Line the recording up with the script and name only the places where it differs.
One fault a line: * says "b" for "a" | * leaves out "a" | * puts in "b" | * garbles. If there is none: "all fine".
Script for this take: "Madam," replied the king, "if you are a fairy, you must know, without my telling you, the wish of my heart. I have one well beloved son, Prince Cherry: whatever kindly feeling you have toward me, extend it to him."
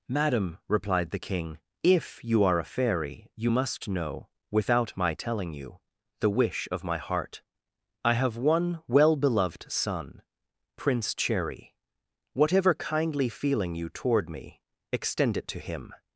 * leaves out "have"